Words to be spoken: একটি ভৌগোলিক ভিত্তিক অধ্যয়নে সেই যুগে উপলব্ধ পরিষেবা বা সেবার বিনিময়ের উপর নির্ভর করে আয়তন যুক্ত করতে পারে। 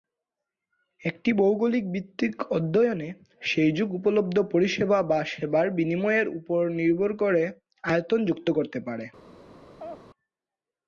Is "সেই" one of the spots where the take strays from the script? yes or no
no